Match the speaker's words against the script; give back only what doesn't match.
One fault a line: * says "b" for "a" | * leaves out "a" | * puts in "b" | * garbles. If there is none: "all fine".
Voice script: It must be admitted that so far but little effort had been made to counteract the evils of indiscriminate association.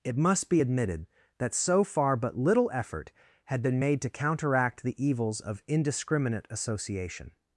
all fine